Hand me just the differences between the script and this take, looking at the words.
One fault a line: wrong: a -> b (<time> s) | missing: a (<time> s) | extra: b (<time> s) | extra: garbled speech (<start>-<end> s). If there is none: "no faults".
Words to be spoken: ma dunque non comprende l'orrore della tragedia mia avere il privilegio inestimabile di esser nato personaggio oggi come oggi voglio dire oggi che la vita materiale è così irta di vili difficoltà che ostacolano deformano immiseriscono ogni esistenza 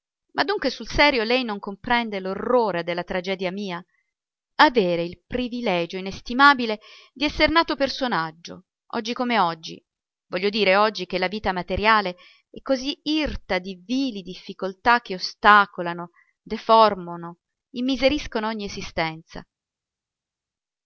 extra: sul serio lei (0.7 s)